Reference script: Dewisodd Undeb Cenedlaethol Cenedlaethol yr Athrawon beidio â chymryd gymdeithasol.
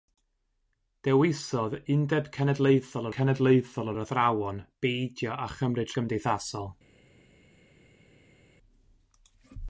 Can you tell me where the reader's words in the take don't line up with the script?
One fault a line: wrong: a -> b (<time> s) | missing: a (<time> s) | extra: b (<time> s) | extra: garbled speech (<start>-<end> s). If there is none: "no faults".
no faults